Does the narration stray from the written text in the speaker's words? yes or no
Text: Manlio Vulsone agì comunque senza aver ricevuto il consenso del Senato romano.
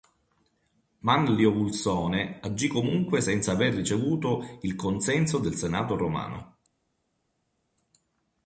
no